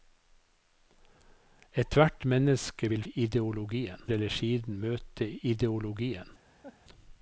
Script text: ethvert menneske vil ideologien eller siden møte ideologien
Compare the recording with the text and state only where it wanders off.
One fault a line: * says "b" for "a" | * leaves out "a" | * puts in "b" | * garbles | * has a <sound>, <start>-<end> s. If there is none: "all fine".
* has a laugh, 6.6-6.8 s